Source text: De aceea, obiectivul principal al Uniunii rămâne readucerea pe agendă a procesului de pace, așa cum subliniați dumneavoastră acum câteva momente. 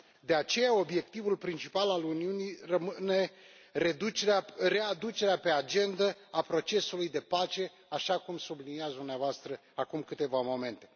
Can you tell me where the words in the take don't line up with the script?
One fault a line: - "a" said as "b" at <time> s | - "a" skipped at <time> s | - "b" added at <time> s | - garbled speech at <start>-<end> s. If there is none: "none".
none